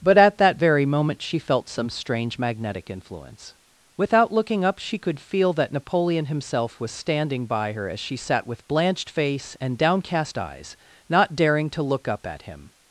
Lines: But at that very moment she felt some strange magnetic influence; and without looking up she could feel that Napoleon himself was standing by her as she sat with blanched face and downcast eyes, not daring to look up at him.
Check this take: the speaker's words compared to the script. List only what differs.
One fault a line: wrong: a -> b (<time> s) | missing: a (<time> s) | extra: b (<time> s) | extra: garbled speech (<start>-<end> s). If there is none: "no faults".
missing: and (3.5 s)